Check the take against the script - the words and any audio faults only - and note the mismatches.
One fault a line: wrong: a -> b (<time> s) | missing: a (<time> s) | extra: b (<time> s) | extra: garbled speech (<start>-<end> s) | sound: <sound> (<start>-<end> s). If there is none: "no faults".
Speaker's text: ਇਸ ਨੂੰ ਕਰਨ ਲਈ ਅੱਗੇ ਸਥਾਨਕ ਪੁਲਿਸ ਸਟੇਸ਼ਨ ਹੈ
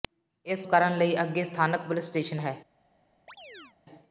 missing: ਨੂੰ (0.7 s)
sound: chirp (3.3-3.8 s)